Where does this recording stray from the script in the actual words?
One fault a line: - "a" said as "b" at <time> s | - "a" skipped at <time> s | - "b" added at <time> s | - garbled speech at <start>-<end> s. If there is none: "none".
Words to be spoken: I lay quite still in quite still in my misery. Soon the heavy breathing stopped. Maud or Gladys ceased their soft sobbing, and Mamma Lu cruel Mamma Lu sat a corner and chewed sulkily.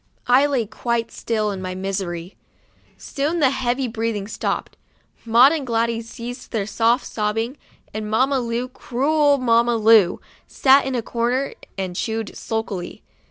- "quite still in" skipped at 1.6 s
- "or" said as "and" at 5.5 s
- "in" added at 10.9 s